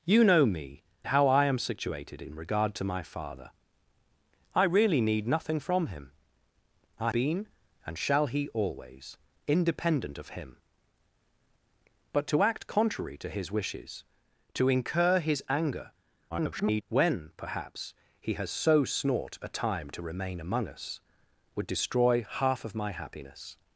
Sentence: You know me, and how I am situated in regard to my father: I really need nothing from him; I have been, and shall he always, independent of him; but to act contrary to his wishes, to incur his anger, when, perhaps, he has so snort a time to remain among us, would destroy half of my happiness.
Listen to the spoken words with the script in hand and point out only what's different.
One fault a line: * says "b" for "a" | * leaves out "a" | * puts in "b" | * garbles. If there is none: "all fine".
* leaves out "and"
* leaves out "have"
* garbles